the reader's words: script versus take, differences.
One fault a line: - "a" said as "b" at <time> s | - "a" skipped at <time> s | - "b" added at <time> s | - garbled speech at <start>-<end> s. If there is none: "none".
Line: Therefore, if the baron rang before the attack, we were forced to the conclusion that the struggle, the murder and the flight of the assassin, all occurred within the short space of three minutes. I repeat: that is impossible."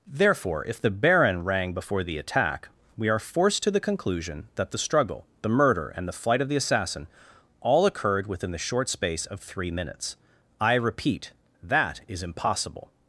- "were" said as "are" at 3.1 s